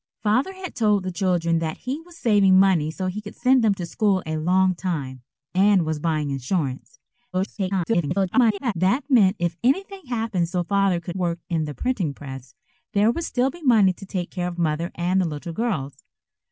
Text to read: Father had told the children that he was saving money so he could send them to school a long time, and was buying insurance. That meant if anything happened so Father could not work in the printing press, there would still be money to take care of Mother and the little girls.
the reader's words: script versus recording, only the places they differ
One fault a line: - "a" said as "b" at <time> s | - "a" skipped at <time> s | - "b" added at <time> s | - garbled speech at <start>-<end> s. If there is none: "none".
- garbled speech at 7.3-8.7 s
- "not" skipped at 11.2 s